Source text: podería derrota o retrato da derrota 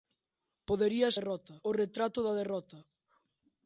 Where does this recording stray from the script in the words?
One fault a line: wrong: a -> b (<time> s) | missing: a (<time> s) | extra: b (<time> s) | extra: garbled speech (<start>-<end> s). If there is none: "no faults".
no faults